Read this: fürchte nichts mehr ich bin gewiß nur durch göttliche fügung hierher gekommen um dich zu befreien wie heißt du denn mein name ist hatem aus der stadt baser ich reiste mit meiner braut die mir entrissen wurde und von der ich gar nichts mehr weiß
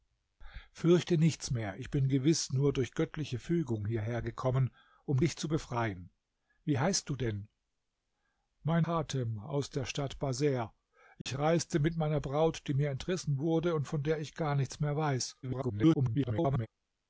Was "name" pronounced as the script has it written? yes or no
no